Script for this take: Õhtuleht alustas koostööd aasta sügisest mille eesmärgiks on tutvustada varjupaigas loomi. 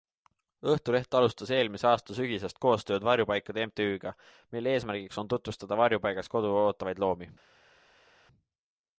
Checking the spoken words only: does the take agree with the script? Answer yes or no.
no